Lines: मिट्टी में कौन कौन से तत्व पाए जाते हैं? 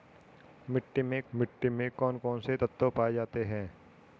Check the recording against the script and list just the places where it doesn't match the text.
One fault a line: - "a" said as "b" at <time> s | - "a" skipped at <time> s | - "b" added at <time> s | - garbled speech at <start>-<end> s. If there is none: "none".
- "मिट्टी में" added at 1.3 s